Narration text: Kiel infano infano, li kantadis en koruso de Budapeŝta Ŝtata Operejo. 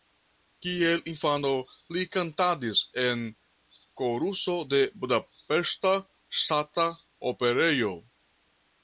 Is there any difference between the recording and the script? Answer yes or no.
yes